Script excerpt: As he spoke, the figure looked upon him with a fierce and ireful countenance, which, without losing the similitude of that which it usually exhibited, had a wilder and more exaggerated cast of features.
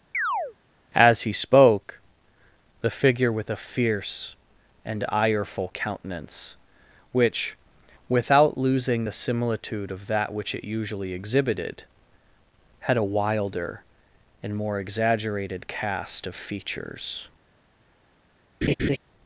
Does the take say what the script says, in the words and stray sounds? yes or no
no